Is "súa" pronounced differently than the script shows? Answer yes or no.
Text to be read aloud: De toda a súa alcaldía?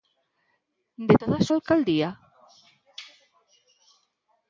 yes